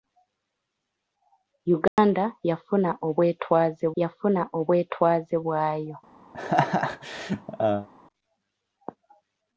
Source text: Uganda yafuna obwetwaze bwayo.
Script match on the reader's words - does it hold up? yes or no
no